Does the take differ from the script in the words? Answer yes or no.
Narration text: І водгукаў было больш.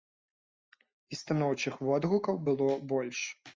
yes